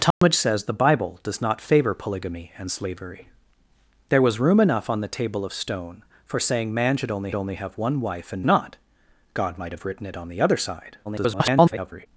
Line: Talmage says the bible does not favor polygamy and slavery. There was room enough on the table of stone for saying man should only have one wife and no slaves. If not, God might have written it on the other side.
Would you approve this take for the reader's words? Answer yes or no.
no